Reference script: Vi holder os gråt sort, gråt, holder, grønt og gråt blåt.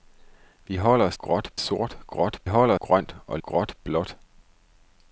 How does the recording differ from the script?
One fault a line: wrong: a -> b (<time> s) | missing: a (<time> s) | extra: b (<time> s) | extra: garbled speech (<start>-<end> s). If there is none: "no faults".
no faults